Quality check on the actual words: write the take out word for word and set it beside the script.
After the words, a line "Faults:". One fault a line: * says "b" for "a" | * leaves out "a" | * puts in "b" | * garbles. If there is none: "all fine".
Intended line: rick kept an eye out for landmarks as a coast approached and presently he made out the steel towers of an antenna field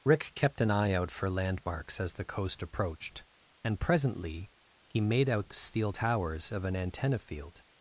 rick kept an eye out for landmarks as the coast approached and presently he made out the steel towers of an antenna field
Faults:
* says "the" for "a"